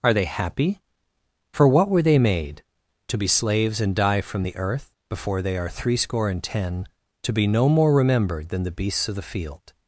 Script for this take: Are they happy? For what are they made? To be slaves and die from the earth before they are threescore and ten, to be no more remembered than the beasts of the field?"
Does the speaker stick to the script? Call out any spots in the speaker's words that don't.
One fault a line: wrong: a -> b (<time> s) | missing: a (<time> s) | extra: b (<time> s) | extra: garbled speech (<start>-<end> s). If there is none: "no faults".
wrong: are -> were (1.9 s)